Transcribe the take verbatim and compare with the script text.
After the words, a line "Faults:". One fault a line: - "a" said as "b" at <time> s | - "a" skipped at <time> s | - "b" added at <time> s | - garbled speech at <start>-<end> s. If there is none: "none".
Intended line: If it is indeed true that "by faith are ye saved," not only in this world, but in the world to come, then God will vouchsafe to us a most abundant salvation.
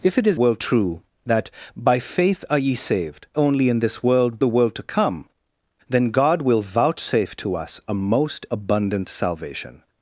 If it is world true that "by faith are ye saved," only in this world, the world to come, then God will vouchsafe to us a most abundant salvation.
Faults:
- "indeed" said as "world" at 0.3 s
- "not" skipped at 3.3 s
- "but in" skipped at 4.4 s